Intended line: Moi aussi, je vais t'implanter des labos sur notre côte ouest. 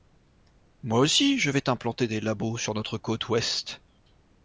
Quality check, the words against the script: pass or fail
pass